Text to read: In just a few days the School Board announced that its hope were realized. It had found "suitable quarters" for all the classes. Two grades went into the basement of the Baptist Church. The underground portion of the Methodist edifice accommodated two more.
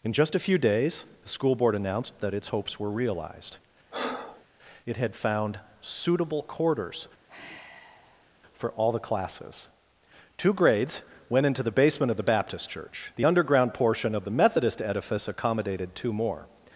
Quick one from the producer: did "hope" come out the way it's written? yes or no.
no